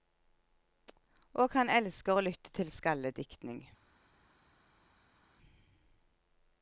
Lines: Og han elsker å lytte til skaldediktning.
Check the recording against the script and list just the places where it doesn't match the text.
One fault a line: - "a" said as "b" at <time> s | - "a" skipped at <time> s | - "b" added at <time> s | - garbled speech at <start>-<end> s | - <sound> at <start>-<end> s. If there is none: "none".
none